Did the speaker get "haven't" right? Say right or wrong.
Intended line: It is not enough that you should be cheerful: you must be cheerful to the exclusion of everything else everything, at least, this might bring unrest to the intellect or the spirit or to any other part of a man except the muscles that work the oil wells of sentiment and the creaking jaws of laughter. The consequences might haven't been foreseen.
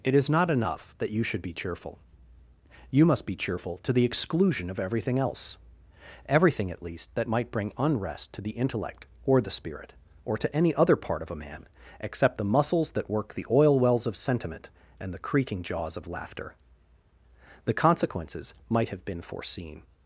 wrong